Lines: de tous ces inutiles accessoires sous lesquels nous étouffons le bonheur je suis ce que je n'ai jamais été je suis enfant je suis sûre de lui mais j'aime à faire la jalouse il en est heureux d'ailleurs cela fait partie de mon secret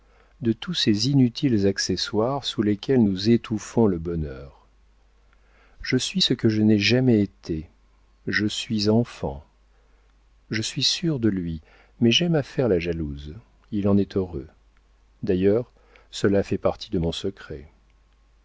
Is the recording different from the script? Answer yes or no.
no